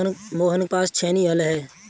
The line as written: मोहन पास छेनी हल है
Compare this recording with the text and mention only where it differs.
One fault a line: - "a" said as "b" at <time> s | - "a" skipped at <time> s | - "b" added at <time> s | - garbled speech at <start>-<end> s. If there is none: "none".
none